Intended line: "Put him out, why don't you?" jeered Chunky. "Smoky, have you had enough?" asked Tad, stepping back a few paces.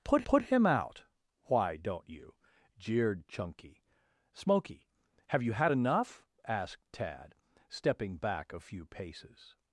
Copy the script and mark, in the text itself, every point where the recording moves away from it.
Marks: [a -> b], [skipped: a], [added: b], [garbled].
"Put [added: put] him out, why don't you?" jeered Chunky. "Smoky, have you had enough?" asked Tad, stepping back a few paces.